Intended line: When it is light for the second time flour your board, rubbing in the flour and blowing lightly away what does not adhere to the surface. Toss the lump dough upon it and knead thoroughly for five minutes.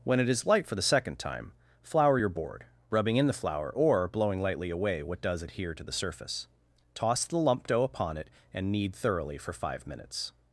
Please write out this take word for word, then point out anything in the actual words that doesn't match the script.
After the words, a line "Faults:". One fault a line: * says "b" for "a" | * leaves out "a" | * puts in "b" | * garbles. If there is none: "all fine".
When it is light for the second time flour your board, rubbing in the flour or blowing lightly away what does adhere to the surface. Toss the lump dough upon it and knead thoroughly for five minutes.
Faults:
* says "or" for "and"
* leaves out "not"